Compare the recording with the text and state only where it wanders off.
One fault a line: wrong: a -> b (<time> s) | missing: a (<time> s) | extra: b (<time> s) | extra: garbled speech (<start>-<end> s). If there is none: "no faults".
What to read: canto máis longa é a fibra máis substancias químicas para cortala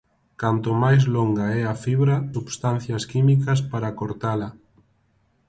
missing: máis (2.1 s)